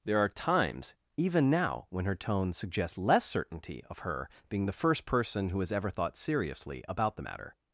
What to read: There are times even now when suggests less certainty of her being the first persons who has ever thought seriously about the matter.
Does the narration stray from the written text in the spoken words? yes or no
yes